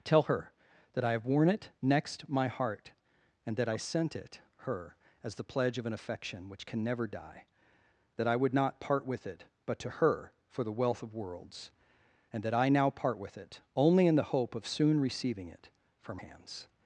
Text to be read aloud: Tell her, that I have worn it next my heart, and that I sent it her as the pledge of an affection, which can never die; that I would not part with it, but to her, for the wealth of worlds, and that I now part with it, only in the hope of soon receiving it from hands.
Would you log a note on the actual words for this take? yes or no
no